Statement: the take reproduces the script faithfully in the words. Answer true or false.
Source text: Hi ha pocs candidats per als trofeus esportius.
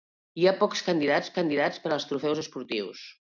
false